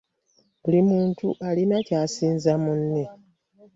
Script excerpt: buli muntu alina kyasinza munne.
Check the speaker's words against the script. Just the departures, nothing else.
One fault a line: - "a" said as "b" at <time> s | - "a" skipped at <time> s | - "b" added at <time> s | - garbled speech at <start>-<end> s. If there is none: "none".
none